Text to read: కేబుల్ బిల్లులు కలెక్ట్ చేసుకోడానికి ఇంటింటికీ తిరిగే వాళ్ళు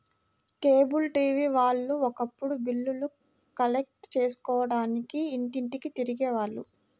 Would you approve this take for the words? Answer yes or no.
no